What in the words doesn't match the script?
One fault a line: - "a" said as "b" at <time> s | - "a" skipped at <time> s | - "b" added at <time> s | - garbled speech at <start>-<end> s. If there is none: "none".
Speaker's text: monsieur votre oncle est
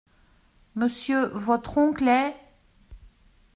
none